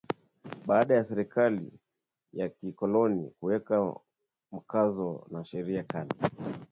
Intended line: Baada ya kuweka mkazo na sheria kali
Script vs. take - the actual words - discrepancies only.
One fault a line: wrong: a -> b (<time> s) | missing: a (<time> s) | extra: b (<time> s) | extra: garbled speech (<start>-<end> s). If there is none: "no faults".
extra: serikali ya kikoloni (1.1 s)